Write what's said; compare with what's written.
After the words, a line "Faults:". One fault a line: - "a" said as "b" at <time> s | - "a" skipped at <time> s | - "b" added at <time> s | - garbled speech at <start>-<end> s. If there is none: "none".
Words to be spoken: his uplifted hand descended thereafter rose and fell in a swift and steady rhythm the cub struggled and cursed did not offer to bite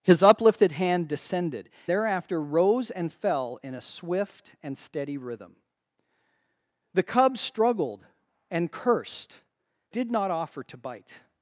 his uplifted hand descended thereafter rose and fell in a swift and steady rhythm the cub struggled and cursed did not offer to bite
Faults:
none